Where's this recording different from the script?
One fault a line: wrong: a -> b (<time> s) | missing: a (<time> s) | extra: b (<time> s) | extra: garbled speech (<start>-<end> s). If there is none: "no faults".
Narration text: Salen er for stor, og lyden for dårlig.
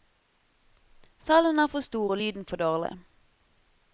no faults